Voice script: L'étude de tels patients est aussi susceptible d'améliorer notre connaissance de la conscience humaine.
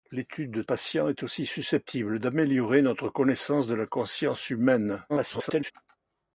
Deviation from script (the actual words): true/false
true